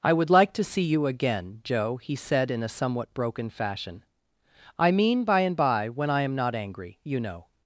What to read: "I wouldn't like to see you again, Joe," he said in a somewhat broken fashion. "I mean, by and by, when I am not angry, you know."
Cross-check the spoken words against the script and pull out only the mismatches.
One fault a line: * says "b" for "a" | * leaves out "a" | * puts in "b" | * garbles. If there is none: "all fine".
* says "would" for "wouldn't"